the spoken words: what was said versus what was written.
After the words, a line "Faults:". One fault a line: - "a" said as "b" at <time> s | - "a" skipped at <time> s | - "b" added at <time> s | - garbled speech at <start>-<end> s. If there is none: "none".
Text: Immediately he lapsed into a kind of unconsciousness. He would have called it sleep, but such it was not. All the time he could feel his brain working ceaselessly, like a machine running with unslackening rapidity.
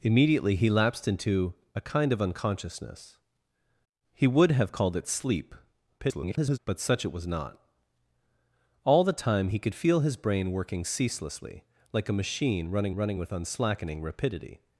Immediately he lapsed into a kind of unconsciousness. He would have called it sleep, [garbled] but such it was not. All the time he could feel his brain working ceaselessly, like a machine running running with unslackening rapidity.
Faults:
- garbled speech at 6.0-6.6 s
- "running" added at 12.9 s